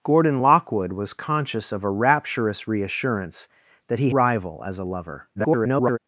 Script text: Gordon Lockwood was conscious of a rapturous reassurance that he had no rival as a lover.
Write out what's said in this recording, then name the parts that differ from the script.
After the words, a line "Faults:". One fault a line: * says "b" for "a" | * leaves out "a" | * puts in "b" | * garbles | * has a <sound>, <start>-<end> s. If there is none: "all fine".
Gordon Lockwood was conscious of a rapturous reassurance that he rival as a lover. [garbled]
Faults:
* leaves out "had no"
* garbles